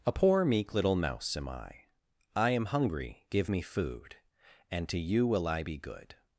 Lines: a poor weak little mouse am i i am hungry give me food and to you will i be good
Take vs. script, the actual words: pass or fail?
fail